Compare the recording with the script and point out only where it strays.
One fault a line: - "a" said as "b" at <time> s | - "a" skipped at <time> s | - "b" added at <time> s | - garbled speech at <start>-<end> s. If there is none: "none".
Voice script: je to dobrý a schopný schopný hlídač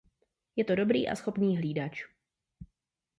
- "schopný" skipped at 1.6 s